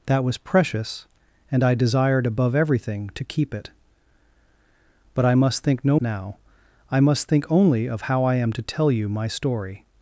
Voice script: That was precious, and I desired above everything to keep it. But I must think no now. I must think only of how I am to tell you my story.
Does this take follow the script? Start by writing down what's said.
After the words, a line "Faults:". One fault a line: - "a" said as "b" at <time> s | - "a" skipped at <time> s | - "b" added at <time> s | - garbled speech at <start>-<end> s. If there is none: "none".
That was precious, and I desired above everything to keep it. But I must think no now. I must think only of how I am to tell you my story.
Faults:
none